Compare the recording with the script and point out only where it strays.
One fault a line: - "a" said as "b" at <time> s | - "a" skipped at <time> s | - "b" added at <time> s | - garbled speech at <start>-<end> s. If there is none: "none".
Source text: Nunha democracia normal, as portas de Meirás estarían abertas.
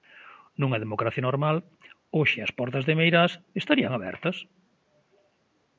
- "hoxe" added at 2.2 s